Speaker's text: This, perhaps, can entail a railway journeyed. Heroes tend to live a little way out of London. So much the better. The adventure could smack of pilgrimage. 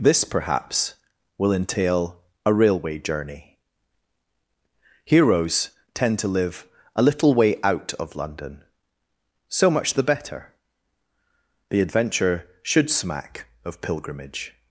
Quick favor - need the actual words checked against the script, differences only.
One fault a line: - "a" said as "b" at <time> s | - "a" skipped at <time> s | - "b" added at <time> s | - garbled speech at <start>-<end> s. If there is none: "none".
- "can" said as "will" at 1.4 s
- "journeyed" said as "journey" at 3.0 s
- "could" said as "should" at 12.6 s